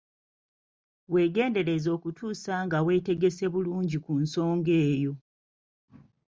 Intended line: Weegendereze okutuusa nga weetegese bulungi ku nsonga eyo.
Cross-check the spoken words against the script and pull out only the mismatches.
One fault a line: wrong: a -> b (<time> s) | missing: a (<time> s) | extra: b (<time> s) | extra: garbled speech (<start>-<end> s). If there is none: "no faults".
no faults